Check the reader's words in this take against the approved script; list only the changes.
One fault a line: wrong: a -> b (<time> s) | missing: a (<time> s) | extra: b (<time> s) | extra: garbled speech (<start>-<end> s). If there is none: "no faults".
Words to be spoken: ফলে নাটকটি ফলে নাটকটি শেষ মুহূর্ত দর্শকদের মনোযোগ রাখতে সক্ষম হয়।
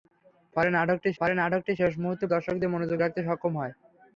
no faults